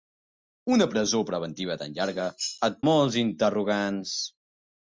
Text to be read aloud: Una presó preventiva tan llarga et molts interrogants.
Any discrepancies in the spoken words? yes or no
no